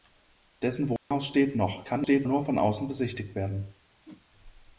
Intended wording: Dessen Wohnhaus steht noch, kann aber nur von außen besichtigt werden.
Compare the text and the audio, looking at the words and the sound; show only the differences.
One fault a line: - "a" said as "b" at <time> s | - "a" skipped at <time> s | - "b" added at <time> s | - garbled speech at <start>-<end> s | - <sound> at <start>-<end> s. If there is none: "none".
- dropout at 1.0-1.1 s
- "aber" said as "steht" at 2.0 s
- whoosh at 4.0-4.3 s